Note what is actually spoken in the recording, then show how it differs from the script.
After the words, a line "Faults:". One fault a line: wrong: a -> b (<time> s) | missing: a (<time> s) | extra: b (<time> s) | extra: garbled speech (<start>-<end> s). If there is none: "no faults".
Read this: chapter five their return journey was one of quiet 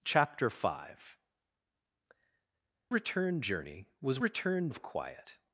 chapter five return journey was return of quiet
Faults:
missing: their (1.2 s)
wrong: one -> return (4.2 s)